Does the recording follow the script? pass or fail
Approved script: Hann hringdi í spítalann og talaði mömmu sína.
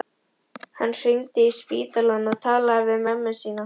fail